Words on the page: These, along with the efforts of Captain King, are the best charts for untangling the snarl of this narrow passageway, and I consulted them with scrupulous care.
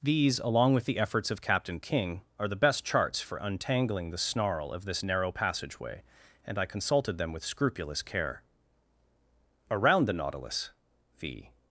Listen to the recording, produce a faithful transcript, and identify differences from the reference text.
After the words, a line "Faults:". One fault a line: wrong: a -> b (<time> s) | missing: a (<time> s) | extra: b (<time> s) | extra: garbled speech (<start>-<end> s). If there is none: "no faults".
These, along with the efforts of Captain King, are the best charts for untangling the snarl of this narrow passageway, and I consulted them with scrupulous care. Around the Nautilus the
Faults:
extra: Around the Nautilus the (9.7 s)